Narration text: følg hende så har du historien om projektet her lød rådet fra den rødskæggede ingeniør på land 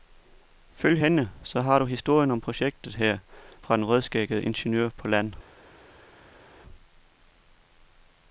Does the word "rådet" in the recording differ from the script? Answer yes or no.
yes